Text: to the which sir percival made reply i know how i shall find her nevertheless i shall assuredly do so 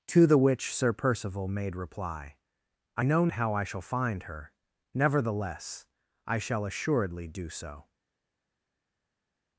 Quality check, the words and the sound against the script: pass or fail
pass